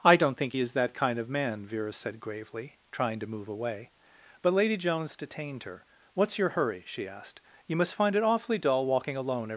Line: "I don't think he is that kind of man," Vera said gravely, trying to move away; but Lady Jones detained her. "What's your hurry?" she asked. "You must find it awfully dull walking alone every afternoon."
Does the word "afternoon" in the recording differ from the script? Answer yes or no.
yes